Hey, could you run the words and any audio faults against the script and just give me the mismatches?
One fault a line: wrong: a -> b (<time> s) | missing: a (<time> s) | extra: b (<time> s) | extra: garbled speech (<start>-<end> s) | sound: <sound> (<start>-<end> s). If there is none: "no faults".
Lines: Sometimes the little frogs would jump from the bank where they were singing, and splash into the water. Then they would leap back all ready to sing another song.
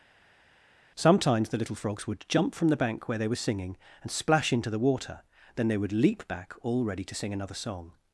no faults